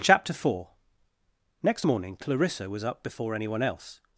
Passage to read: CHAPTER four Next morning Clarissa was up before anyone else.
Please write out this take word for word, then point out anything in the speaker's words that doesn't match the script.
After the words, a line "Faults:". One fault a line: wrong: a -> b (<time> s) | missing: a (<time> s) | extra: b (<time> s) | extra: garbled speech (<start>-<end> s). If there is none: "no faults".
CHAPTER four Next morning Clarissa was up before anyone else.
Faults:
no faults